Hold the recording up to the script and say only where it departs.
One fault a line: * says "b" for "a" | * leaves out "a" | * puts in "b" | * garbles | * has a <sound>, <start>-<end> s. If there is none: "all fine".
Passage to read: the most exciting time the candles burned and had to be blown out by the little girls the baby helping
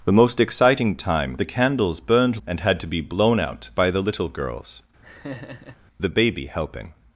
* has a laugh, 5.0-5.8 s